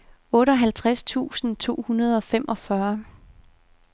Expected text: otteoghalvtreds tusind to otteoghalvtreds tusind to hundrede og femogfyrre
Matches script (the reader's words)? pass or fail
fail